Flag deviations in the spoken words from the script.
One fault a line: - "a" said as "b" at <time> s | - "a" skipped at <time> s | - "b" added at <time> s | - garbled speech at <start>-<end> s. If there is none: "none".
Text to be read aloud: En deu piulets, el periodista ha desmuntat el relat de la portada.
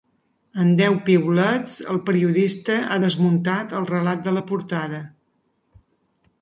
none